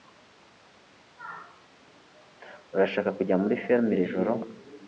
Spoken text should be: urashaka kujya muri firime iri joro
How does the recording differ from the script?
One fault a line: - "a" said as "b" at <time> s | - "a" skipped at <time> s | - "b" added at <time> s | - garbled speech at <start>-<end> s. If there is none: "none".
none